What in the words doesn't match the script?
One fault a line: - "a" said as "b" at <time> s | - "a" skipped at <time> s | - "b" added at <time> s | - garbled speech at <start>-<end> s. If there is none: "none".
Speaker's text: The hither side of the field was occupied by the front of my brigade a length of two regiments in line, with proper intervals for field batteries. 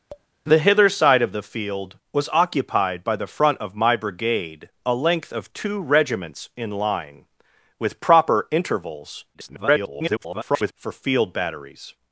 - garbled speech at 9.3-10.7 s